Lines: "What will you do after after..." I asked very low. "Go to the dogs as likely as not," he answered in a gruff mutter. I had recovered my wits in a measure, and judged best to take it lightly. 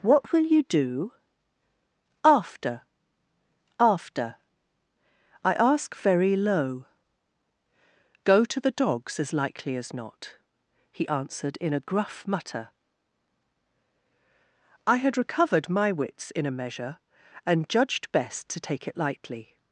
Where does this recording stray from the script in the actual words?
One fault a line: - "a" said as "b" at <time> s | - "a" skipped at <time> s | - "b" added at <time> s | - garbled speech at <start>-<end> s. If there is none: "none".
- "asked" said as "ask" at 5.5 s